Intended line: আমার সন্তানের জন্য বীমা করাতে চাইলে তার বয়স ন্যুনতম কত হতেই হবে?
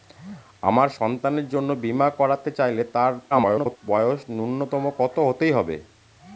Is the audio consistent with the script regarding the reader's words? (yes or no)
no